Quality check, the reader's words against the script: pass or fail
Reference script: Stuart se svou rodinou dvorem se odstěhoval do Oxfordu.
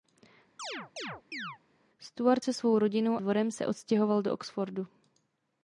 pass